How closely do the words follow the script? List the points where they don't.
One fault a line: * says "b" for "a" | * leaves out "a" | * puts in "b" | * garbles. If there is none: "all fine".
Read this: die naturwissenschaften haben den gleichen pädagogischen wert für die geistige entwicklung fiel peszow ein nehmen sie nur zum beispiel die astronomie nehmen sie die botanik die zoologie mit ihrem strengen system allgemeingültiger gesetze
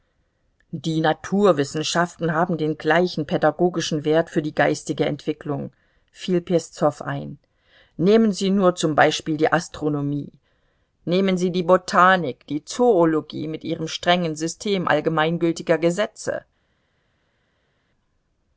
all fine